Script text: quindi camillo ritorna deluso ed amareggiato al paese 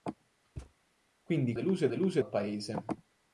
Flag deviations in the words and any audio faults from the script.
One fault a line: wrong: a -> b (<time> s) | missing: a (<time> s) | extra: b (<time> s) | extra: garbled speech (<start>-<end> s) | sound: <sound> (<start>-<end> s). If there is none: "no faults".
sound: thud (0.6-0.7 s)
missing: camillo ritorna (1.5 s)
wrong: amareggiato -> deluso (1.9 s)